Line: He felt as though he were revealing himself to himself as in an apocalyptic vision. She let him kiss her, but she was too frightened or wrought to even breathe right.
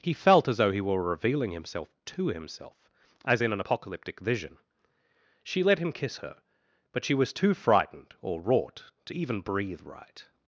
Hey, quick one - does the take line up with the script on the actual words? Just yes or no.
yes